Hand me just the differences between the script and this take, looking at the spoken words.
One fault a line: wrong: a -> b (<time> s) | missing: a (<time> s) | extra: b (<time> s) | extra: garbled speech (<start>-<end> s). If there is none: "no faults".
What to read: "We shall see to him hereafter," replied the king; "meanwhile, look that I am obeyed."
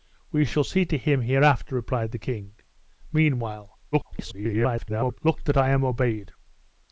extra: garbled speech (3.9-5.2 s)